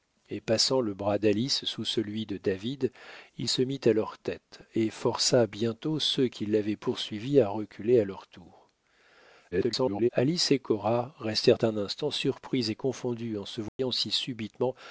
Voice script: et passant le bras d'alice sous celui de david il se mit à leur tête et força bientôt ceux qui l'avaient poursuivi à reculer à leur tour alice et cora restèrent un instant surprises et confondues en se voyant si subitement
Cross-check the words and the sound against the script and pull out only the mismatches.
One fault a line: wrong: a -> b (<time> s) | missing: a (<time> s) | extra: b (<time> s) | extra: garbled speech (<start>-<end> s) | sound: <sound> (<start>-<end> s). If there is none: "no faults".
extra: garbled speech (9.5-10.1 s)
sound: dropout (13.7-13.8 s)